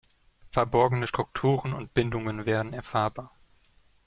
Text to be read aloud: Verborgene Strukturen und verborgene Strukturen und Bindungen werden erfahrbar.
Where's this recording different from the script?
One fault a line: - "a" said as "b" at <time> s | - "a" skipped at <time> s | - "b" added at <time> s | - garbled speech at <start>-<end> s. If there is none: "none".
- "verborgene Strukturen und" skipped at 1.9 s